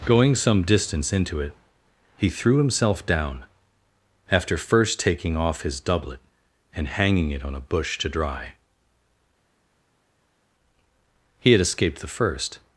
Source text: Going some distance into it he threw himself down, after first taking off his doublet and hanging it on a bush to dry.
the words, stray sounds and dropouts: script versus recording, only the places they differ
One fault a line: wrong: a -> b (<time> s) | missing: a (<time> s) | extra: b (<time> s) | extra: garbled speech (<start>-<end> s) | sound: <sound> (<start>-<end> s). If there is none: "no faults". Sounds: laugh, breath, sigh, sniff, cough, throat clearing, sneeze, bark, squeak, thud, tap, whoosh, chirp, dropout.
extra: He had escaped the first (11.4 s)